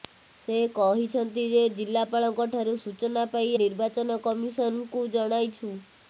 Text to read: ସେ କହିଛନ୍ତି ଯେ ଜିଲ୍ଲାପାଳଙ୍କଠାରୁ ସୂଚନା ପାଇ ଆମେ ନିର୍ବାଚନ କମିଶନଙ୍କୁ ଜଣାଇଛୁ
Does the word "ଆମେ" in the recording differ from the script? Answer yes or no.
yes